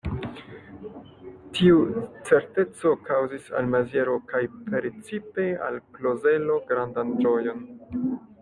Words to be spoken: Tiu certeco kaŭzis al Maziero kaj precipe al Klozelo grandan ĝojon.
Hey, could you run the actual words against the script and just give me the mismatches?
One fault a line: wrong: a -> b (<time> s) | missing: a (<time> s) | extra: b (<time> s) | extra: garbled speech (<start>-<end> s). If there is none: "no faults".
no faults